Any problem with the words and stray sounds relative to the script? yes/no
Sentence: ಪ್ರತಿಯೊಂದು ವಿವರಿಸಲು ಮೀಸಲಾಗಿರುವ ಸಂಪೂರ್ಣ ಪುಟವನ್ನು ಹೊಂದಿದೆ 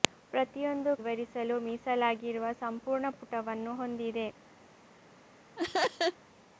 yes